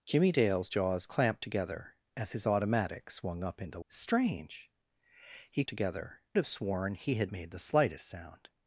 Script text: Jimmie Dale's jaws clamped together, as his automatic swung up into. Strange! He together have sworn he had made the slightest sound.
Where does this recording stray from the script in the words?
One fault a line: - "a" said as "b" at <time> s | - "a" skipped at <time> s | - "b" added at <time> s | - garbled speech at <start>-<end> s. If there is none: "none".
none